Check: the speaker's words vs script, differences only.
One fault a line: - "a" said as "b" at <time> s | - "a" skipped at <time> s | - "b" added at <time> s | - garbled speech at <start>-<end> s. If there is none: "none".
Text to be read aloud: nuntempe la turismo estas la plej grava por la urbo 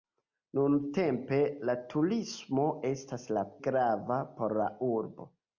- "plej" skipped at 3.4 s